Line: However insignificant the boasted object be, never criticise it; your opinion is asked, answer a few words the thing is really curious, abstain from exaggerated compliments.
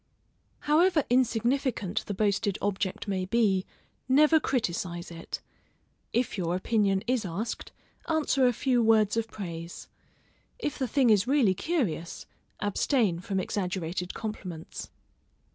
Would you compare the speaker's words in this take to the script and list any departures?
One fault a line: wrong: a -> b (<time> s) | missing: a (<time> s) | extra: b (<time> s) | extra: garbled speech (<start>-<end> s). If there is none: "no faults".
extra: may (3.1 s)
extra: if (6.1 s)
extra: of praise if (9.2 s)